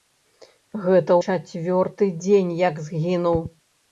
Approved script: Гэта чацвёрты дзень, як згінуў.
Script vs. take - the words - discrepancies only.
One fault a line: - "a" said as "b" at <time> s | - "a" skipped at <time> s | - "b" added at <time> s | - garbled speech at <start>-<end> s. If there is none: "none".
none